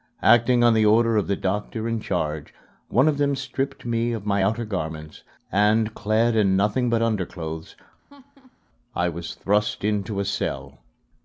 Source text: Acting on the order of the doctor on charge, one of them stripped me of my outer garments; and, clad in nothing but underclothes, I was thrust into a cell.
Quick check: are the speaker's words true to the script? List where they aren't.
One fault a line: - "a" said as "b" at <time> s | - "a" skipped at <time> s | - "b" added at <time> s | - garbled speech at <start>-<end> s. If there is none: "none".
- "on" said as "in" at 1.9 s